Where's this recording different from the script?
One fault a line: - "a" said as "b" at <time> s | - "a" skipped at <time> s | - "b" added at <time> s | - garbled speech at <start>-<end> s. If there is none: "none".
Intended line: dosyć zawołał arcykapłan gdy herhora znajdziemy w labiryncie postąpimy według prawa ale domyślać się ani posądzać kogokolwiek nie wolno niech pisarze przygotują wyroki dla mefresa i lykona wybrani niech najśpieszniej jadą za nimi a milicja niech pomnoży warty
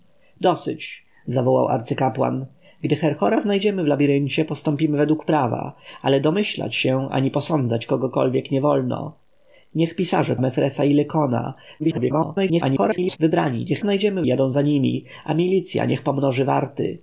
- "przygotują wyroki dla" skipped at 10.3 s
- garbled speech at 11.8-13.2 s
- "najśpieszniej" said as "znajdziemy" at 13.8 s